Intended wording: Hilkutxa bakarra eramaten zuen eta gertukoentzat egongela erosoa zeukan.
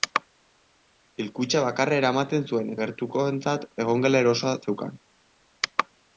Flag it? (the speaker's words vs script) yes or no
yes